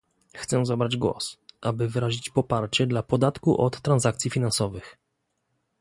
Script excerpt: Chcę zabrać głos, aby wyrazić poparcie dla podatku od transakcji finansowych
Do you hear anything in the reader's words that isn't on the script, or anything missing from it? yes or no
no